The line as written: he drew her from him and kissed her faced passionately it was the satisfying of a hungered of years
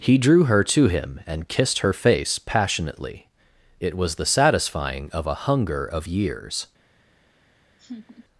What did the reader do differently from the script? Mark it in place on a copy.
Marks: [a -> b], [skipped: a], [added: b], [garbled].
he drew her [from -> to] him and kissed her [faced -> face] passionately it was the satisfying of a [hungered -> hunger] of years